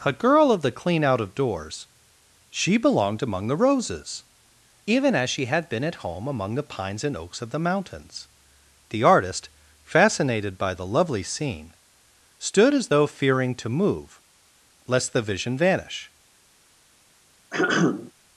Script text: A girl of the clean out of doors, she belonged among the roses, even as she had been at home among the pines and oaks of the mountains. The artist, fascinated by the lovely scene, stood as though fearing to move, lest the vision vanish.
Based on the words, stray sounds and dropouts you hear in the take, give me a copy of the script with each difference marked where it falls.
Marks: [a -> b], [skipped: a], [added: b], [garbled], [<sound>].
A girl of the clean out of doors, she belonged among the roses, even as she had been at home among the pines and oaks of the mountains. The artist, fascinated by the lovely scene, stood as though fearing to move, lest the vision vanish. [throat clearing]